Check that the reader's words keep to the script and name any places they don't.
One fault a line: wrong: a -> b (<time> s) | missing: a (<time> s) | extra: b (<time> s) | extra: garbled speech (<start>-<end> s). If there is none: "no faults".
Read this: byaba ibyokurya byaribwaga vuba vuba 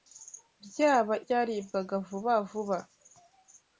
missing: ibyokurya (1.1 s)